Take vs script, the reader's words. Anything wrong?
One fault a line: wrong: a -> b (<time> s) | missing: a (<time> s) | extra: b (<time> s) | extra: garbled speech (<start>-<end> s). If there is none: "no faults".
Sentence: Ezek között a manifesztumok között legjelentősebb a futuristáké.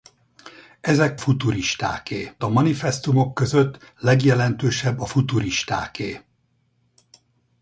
wrong: között -> futuristáké (1.1 s)